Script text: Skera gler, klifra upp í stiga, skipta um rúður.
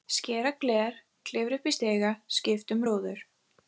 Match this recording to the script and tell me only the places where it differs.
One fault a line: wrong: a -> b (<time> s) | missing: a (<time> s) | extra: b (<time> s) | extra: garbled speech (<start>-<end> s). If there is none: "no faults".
no faults